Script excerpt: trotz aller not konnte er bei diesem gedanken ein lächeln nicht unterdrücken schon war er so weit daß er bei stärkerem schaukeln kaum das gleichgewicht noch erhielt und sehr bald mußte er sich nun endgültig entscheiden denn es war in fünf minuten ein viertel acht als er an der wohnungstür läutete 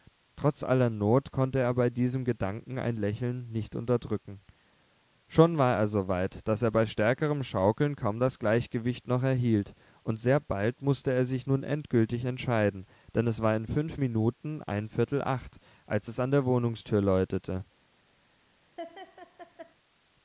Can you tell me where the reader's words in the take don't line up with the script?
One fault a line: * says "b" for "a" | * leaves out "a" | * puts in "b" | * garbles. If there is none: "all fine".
* says "es" for "er"